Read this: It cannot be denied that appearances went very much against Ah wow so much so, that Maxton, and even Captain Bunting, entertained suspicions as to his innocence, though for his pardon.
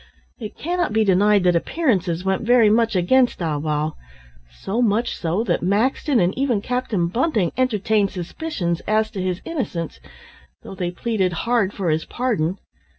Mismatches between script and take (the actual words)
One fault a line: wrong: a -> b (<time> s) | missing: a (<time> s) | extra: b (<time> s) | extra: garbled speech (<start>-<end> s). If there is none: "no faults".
extra: they pleaded hard (10.7 s)